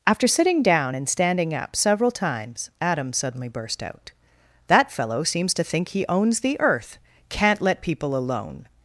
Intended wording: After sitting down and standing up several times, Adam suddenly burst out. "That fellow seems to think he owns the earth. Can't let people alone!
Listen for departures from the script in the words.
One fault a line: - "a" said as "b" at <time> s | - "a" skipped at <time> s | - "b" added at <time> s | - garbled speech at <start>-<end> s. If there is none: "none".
none